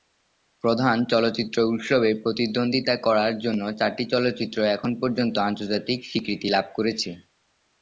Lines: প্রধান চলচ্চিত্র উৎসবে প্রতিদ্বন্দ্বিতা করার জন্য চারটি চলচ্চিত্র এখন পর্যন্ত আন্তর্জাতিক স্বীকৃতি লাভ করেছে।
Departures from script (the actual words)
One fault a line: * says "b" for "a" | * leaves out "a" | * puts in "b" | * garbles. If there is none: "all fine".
all fine